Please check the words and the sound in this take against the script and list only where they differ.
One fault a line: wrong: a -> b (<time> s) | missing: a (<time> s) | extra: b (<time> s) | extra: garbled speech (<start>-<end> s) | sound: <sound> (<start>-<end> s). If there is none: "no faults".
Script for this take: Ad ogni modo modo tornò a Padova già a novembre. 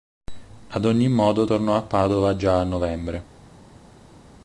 missing: modo (1.4 s)